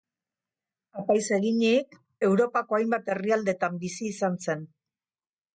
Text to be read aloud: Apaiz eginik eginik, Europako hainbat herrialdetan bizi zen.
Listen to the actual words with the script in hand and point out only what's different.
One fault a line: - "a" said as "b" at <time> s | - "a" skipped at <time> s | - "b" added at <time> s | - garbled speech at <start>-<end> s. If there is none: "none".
- "eginik" skipped at 1.9 s
- "izan" added at 4.2 s